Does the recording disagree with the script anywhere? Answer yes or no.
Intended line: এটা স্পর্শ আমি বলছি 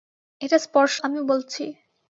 no